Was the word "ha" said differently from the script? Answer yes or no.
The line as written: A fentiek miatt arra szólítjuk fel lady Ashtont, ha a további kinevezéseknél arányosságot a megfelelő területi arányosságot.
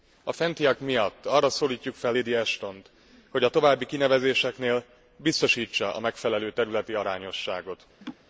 yes